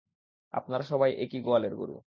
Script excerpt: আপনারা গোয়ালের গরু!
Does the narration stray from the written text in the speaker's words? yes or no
yes